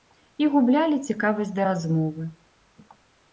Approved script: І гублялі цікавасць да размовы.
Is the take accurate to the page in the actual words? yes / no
yes